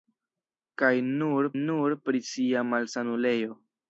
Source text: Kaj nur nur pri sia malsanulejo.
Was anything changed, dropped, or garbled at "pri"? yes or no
no